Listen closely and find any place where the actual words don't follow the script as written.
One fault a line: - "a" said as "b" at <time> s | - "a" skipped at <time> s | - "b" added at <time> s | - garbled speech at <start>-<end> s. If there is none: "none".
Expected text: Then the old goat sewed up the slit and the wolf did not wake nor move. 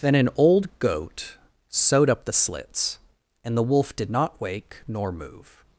- "the" said as "an" at 0.1 s
- "slit" said as "slits" at 2.3 s